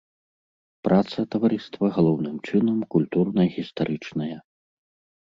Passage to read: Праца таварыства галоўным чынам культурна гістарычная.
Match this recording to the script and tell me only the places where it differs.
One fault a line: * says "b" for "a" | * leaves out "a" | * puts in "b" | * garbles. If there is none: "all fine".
all fine